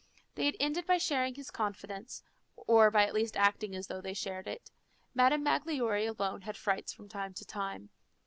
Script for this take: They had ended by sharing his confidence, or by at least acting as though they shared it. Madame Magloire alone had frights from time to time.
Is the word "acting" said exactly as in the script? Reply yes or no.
yes